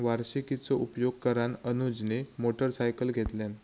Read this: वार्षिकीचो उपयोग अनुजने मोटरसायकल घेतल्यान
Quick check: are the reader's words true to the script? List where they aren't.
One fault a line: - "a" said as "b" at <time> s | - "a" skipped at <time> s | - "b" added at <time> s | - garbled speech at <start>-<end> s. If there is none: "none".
- "करान" added at 1.2 s